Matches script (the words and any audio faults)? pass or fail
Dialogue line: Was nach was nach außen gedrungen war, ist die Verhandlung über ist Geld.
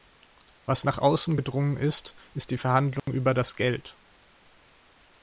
fail